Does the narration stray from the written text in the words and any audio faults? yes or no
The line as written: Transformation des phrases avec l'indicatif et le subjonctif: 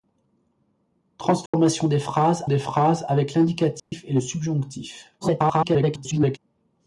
yes